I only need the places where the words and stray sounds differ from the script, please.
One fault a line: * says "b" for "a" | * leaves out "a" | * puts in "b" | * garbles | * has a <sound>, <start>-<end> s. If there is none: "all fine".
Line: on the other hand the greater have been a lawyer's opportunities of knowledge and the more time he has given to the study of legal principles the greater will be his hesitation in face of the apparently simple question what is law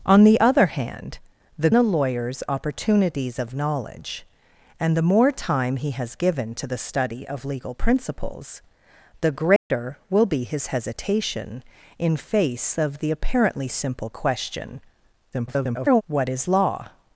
* leaves out "greater have been"
* has a dropout, 9.6-9.7 s
* garbles